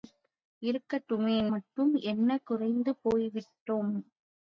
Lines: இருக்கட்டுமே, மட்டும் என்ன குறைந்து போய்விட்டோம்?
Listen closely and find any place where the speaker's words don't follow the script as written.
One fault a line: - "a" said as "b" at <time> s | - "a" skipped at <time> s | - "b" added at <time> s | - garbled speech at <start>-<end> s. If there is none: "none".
none